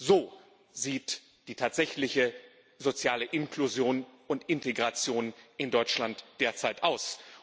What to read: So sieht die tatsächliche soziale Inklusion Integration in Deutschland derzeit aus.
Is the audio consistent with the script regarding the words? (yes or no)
no